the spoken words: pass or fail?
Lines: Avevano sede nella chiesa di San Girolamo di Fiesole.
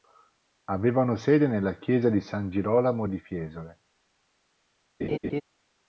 pass